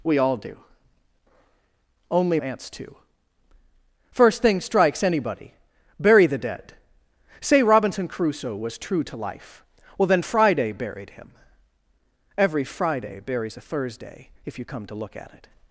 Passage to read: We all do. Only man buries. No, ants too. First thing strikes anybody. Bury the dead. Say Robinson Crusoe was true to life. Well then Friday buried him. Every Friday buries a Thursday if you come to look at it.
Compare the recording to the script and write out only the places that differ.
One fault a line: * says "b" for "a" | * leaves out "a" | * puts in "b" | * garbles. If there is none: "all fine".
* leaves out "man buries No"